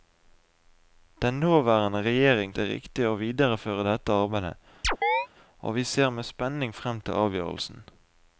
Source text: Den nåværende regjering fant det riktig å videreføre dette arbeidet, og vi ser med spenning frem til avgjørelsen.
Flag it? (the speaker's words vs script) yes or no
yes